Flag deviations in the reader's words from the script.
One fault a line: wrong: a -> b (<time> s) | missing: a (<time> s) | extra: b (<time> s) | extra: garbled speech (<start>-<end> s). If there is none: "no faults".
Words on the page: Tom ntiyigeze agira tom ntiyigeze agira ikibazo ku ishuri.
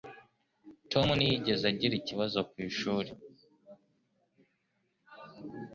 missing: tom ntiyigeze agira (1.9 s)